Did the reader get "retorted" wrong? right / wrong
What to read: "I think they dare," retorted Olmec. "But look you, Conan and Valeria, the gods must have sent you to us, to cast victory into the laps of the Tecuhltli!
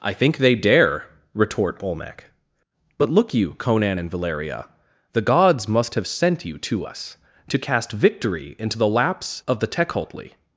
wrong